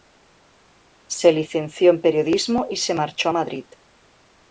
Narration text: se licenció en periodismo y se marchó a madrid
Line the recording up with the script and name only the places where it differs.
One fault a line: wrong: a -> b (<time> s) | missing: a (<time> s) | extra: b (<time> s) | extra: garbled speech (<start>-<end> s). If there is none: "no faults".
no faults